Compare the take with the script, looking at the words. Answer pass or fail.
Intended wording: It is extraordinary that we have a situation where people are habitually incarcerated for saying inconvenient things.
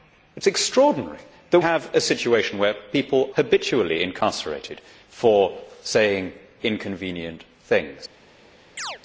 fail